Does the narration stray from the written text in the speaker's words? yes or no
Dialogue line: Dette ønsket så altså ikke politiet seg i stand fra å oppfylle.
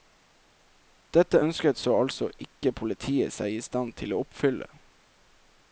yes